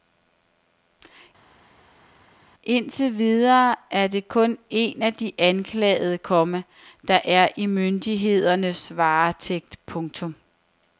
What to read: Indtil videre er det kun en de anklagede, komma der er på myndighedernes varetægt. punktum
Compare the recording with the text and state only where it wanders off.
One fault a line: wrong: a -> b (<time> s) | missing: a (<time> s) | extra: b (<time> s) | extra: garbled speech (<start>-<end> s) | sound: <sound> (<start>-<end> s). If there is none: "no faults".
extra: af (5.0 s)
wrong: på -> i (7.6 s)